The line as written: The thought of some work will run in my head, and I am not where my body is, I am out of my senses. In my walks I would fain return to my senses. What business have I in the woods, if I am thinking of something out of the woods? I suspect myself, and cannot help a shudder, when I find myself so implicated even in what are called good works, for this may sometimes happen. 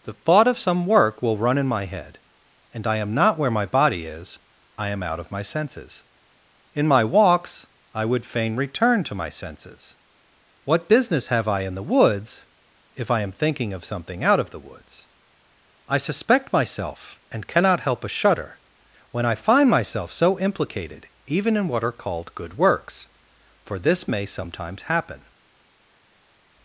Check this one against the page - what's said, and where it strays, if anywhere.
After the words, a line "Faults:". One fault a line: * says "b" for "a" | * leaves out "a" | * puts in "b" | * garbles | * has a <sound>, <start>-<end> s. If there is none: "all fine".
The thought of some work will run in my head, and I am not where my body is, I am out of my senses. In my walks I would fain return to my senses. What business have I in the woods, if I am thinking of something out of the woods? I suspect myself, and cannot help a shudder, when I find myself so implicated even in what are called good works, for this may sometimes happen.
Faults:
all fine